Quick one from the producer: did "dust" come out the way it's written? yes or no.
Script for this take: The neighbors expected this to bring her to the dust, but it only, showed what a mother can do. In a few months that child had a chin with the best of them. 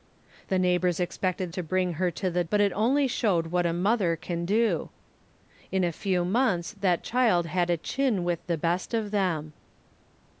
no